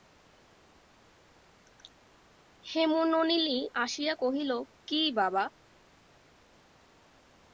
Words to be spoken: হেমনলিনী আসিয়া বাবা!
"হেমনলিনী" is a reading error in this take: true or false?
false